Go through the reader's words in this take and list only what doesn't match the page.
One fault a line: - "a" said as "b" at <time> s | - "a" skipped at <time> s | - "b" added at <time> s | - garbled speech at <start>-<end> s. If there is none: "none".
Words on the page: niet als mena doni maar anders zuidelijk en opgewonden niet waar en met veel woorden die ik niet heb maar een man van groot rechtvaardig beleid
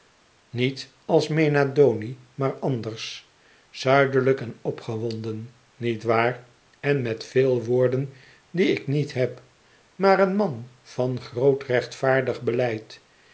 none